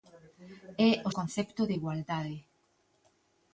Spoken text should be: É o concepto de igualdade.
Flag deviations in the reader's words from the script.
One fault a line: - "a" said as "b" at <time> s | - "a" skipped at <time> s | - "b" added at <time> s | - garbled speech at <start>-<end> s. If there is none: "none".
none